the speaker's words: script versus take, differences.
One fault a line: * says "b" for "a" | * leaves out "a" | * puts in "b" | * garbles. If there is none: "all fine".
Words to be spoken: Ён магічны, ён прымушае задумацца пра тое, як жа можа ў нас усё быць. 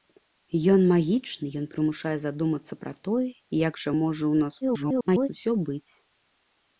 * garbles